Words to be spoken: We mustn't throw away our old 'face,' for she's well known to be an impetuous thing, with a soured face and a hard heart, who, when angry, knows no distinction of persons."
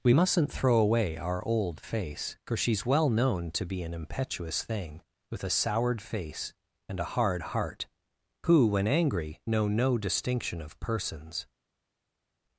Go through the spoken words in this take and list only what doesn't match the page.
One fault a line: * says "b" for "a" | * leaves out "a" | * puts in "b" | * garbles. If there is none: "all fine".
* says "know" for "knows"